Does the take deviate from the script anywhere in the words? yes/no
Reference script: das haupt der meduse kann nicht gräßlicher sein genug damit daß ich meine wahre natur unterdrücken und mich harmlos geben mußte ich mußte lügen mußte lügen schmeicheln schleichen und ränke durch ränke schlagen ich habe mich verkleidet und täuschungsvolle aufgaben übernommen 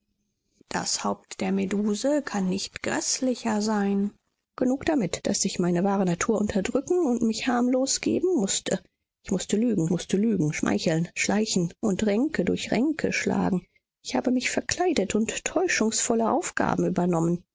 no